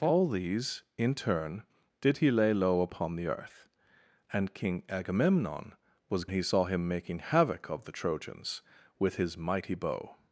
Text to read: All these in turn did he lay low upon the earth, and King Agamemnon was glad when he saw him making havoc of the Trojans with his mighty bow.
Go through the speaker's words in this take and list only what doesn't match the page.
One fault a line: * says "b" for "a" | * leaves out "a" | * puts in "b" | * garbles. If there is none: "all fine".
* leaves out "glad when"